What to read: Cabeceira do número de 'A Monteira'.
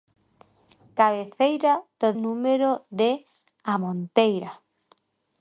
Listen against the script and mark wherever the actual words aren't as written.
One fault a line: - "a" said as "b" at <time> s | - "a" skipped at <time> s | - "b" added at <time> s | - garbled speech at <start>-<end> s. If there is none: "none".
none